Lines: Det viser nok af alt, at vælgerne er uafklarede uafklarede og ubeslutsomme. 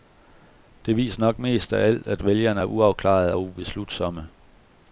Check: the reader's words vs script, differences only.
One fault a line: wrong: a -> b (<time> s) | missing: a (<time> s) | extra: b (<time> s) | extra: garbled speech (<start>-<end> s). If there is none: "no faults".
extra: mest (1.4 s)
missing: uafklarede (3.3 s)